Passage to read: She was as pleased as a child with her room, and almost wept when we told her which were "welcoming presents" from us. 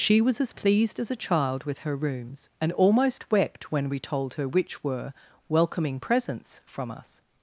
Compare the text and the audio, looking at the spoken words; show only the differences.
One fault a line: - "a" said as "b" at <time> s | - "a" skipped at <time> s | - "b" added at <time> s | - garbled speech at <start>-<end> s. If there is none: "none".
- "room" said as "rooms" at 2.0 s